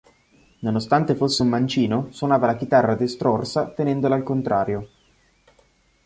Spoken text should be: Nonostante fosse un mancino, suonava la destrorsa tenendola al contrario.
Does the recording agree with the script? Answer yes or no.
no